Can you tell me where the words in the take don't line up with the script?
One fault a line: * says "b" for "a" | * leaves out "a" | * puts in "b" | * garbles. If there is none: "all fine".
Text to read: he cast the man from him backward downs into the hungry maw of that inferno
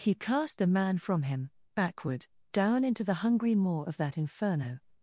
* says "down" for "downs"